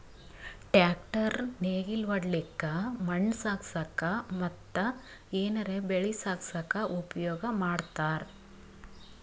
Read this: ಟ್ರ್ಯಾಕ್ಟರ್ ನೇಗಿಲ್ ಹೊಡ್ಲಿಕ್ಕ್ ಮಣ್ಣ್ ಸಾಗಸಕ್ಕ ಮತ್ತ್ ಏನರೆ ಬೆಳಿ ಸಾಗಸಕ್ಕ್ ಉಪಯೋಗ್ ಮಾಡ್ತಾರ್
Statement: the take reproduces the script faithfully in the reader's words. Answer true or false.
true